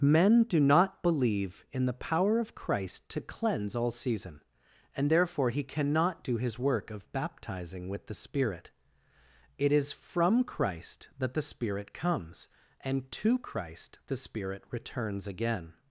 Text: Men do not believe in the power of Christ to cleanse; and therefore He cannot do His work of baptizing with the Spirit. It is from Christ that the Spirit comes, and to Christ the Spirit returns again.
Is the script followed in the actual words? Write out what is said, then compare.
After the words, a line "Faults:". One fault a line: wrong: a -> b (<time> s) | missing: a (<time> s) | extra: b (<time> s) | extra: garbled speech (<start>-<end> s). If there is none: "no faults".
Men do not believe in the power of Christ to cleanse; all season and therefore He cannot do His work of baptizing with the Spirit. It is from Christ that the Spirit comes, and to Christ the Spirit returns again.
Faults:
extra: all season (3.8 s)